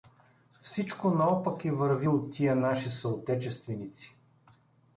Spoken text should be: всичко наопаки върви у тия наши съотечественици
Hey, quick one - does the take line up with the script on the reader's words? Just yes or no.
yes